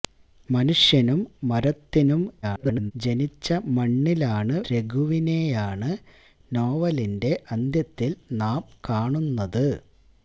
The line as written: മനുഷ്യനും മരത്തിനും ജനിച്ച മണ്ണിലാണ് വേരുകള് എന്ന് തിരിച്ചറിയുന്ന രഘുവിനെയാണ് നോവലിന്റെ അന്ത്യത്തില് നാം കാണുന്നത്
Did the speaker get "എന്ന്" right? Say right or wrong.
wrong